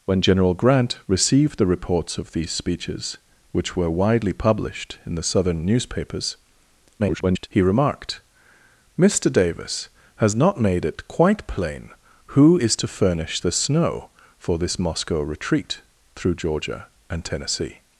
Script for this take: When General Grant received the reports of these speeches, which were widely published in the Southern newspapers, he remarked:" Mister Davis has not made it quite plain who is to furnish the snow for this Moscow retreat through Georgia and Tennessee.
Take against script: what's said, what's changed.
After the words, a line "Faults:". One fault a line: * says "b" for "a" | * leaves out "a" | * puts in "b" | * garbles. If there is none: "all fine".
When General Grant received the reports of these speeches, which were widely published in the Southern newspapers, [garbled] he remarked:" Mister Davis has not made it quite plain who is to furnish the snow for this Moscow retreat through Georgia and Tennessee.
Faults:
* garbles